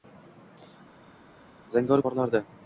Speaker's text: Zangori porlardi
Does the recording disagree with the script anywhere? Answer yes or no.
no